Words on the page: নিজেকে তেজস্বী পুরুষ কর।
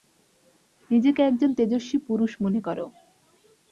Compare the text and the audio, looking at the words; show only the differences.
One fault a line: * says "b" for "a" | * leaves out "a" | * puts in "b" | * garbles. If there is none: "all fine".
* puts in "একজন"
* puts in "মনে"